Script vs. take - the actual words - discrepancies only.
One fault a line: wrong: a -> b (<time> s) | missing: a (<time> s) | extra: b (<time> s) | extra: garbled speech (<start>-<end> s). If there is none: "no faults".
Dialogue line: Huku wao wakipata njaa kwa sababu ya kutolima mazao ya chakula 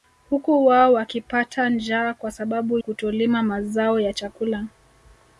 missing: ya (2.8 s)